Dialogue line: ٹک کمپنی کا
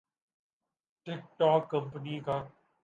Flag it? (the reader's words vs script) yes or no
yes